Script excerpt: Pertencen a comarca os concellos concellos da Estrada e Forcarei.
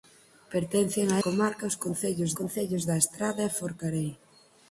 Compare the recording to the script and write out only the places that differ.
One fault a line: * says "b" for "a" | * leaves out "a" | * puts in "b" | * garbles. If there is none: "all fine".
all fine